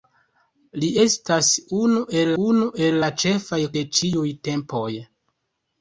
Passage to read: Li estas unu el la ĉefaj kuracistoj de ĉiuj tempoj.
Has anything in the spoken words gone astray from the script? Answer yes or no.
yes